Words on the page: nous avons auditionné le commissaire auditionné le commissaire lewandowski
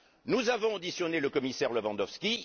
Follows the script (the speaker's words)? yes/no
no